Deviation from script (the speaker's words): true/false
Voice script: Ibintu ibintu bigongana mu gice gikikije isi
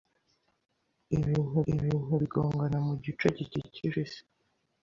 false